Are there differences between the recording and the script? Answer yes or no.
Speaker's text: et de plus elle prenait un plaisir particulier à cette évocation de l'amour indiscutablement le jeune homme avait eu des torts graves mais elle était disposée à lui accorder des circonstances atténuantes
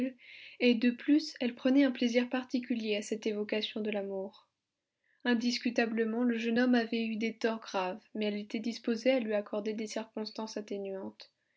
no